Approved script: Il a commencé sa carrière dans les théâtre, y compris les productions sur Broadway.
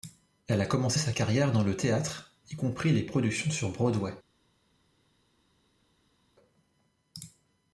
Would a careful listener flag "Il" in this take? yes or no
yes